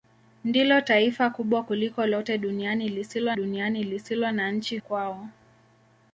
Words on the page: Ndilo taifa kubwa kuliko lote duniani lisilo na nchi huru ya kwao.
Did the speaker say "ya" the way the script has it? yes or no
no